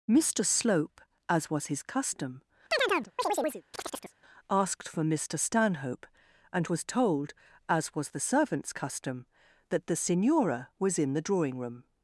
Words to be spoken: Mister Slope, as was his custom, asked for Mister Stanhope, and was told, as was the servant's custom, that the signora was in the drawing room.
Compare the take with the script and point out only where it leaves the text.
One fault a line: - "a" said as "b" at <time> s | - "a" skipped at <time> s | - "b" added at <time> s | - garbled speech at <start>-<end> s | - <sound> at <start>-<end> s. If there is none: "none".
- chirp at 2.7-4.1 s